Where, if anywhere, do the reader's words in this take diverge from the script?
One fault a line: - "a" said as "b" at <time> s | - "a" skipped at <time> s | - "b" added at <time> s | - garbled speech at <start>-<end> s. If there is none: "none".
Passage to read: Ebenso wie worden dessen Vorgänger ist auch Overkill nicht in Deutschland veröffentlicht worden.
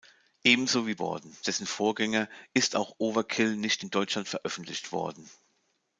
none